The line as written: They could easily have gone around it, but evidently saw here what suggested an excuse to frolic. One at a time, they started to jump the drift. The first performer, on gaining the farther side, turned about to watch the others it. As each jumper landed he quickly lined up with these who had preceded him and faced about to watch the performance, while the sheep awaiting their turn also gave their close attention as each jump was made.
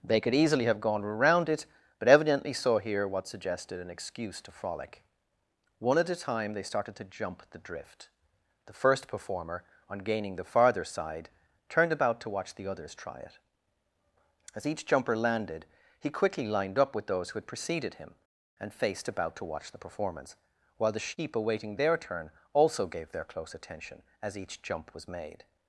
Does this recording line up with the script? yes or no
no